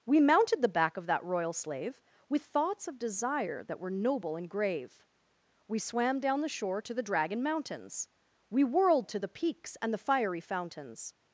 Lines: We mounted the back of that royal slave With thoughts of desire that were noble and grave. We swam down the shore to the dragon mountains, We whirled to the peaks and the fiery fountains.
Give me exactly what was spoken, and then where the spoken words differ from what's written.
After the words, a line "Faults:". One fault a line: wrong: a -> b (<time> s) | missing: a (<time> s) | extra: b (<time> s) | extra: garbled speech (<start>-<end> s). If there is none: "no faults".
We mounted the back of that royal slave With thoughts of desire that were noble and grave. We swam down the shore to the dragon mountains, We whirled to the peaks and the fiery fountains.
Faults:
no faults